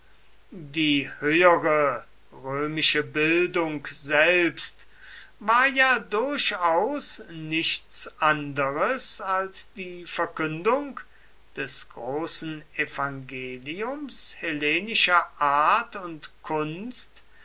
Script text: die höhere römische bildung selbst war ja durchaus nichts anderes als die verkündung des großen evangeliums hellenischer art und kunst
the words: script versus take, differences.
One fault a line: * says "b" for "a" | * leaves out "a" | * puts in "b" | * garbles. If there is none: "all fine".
all fine